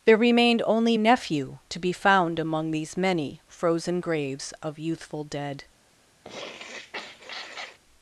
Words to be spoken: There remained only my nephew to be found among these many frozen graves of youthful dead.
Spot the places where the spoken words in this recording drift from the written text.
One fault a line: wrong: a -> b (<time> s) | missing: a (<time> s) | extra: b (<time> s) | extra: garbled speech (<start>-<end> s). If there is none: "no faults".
missing: my (1.0 s)